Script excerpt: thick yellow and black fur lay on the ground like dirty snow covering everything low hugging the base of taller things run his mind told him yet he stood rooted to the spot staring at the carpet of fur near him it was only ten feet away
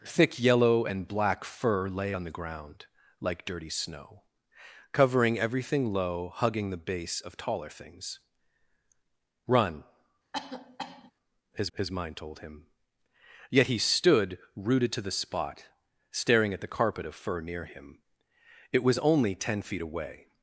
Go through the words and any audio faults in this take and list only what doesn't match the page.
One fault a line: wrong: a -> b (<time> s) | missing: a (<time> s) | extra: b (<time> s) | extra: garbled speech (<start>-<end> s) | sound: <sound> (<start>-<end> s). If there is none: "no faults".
sound: cough (10.3-11.1 s)
extra: his (11.8 s)